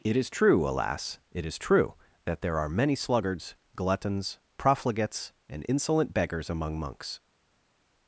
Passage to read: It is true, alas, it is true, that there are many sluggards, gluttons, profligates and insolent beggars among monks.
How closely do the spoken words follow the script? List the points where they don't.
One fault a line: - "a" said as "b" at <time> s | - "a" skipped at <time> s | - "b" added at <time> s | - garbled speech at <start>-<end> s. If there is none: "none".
none